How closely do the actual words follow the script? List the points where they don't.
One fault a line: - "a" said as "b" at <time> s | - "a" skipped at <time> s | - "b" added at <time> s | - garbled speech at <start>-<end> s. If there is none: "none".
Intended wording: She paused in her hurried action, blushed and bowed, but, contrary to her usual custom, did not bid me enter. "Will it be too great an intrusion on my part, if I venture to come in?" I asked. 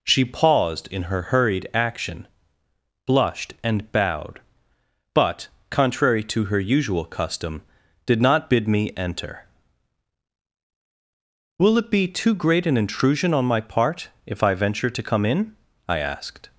none